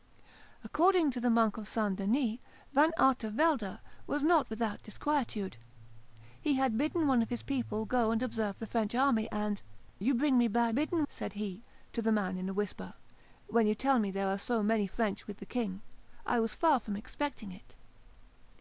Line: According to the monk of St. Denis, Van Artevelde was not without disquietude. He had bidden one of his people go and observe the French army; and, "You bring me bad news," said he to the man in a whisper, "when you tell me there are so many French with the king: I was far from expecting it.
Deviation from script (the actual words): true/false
true